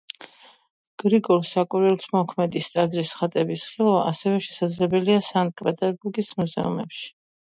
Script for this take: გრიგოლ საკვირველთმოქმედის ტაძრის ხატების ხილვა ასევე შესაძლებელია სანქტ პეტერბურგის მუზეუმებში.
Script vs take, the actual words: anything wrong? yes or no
no